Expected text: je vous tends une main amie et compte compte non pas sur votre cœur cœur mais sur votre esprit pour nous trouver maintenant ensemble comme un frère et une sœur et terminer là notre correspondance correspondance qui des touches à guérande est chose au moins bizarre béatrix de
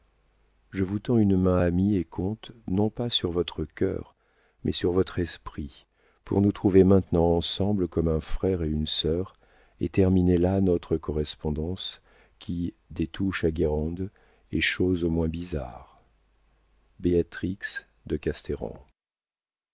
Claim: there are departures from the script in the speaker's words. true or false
true